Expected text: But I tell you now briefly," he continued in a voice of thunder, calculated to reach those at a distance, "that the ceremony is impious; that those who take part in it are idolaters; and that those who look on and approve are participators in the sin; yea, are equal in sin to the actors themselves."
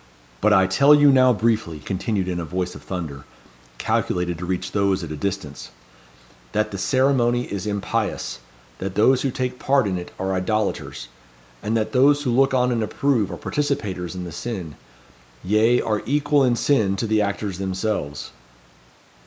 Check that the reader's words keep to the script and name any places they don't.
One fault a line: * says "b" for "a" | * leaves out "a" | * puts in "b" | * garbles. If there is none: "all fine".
* leaves out "he"